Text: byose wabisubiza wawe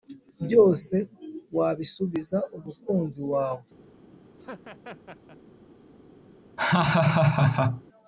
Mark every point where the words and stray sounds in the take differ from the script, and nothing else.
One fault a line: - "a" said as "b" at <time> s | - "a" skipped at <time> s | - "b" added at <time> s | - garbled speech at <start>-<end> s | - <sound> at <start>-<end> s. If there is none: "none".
- "umukunzi" added at 2.6 s
- laugh at 4.4-5.4 s
- laugh at 6.6-7.8 s